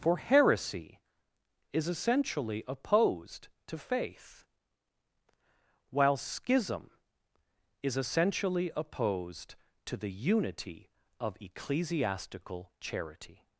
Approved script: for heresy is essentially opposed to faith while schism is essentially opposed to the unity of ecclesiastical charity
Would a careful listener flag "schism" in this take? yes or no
no